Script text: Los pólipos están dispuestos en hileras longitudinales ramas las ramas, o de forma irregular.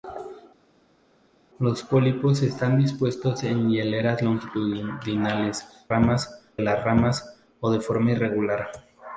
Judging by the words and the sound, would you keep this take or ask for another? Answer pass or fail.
pass